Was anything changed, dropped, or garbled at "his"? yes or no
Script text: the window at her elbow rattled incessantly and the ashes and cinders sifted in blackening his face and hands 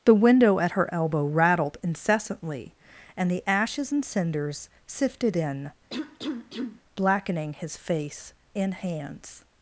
no